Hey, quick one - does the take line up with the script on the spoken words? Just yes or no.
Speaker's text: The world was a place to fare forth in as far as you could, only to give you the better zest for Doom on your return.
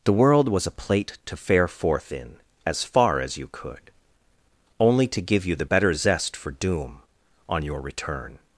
no